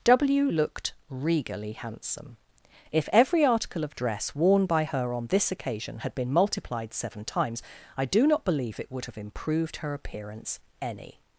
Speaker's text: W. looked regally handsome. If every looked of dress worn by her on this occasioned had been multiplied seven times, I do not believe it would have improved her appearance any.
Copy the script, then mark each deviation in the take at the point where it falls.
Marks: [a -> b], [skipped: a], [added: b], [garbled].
W. looked regally handsome. If every [looked -> article] of dress worn by her on this [occasioned -> occasion] had been multiplied seven times, I do not believe it would have improved her appearance any.